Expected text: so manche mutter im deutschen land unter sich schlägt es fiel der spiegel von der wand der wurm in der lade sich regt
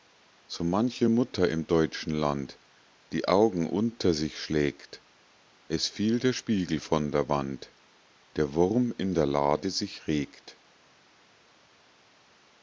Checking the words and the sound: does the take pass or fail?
fail